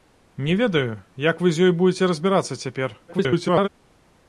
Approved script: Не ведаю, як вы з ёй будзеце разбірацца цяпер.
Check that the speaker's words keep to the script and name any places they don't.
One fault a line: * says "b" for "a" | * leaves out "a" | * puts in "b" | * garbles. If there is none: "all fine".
* garbles